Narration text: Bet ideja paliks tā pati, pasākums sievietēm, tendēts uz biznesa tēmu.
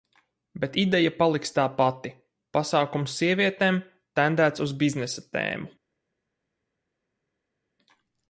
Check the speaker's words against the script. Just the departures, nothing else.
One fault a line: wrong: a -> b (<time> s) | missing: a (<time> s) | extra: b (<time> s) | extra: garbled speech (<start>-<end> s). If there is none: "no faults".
no faults